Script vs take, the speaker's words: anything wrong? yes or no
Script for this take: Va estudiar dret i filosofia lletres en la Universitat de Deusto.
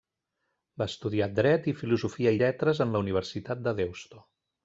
no